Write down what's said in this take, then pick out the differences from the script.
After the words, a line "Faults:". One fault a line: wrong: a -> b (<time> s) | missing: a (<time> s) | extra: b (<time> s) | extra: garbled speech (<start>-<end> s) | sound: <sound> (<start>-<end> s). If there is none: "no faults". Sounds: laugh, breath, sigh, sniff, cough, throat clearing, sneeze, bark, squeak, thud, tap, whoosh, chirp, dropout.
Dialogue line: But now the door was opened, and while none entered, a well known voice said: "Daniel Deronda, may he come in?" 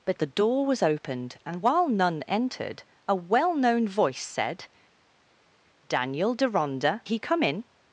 But the door was opened, and while none entered, a well known voice said: "Daniel Deronda, he come in?"
Faults:
missing: now (0.2 s)
missing: may (7.0 s)